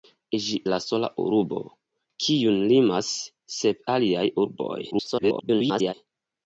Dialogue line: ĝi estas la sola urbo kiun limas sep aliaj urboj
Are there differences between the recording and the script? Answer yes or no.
yes